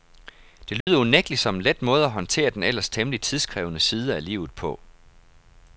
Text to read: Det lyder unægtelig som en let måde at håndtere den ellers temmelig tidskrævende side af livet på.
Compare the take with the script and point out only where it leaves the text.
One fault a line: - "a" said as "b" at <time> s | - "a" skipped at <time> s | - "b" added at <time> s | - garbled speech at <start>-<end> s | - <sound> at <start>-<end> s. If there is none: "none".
- dropout at 0.8-0.9 s